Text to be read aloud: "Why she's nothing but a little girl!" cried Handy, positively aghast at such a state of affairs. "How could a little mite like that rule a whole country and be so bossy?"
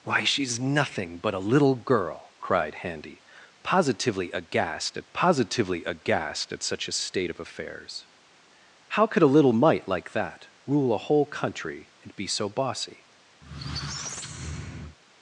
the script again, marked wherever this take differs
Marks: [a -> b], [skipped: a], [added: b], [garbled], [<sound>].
"Why she's nothing but a little girl!" cried Handy, positively aghast at [added: positively aghast at] such a state of affairs. "How could a little mite like that rule a whole country and be so bossy?" [squeak]